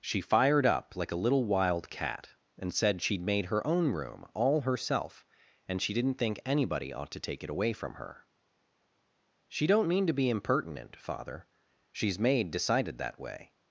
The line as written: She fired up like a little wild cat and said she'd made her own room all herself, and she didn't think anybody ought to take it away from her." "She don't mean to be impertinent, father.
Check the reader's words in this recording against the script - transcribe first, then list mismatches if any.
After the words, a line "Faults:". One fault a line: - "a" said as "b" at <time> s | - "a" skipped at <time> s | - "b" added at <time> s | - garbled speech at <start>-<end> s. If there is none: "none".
She fired up like a little wild cat and said she'd made her own room all herself, and she didn't think anybody ought to take it away from her." "She don't mean to be impertinent, father. She's made decided that way
Faults:
- "She's made decided that way" added at 11.9 s